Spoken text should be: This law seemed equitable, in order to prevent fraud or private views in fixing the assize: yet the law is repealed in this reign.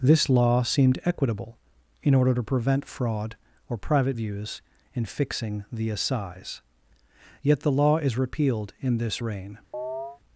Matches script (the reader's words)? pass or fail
pass